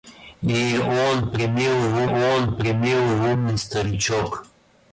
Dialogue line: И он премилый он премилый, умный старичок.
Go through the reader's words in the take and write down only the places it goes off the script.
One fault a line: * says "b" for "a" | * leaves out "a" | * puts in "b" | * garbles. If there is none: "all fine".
all fine